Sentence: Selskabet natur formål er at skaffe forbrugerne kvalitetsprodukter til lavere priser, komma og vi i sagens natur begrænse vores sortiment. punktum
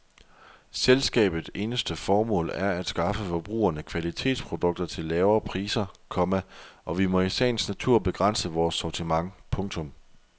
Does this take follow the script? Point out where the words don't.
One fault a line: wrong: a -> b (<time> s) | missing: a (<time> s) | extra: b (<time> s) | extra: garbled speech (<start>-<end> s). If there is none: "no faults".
wrong: natur -> eneste (1.6 s)
extra: må (7.0 s)